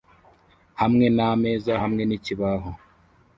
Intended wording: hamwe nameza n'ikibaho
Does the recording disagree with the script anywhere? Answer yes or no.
yes